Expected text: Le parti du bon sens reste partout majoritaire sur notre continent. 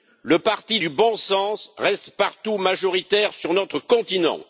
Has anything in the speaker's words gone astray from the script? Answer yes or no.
no